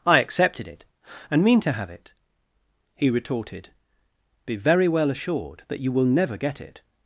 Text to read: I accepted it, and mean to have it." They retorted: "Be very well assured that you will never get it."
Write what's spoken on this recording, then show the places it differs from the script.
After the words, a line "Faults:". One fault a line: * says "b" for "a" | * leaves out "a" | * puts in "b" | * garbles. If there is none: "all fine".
I accepted it, and mean to have it." He retorted: "Be very well assured that you will never get it."
Faults:
* says "He" for "They"